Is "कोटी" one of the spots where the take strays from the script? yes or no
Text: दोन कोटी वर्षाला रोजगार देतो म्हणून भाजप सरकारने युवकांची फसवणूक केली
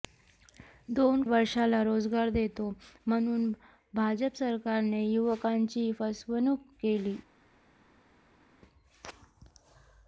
yes